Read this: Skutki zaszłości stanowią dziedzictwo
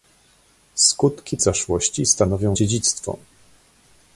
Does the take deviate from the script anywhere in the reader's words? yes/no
no